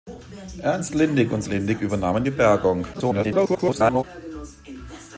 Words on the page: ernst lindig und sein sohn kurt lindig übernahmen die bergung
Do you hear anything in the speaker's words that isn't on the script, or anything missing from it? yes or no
yes